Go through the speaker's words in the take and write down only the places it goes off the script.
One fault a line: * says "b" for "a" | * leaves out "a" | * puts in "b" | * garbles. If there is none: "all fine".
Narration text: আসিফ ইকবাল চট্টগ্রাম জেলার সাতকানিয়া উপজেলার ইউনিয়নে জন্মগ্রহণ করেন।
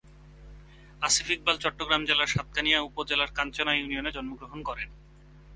* puts in "কাঞ্চনা"